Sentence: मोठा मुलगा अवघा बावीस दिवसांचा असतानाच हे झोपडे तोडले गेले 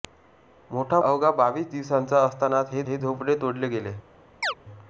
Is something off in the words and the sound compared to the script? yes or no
yes